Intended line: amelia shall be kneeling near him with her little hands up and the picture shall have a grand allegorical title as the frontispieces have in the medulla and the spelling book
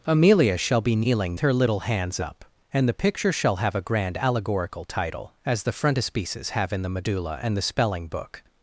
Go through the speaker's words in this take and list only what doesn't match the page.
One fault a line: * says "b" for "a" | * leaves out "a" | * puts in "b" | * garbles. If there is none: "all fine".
* leaves out "near him with"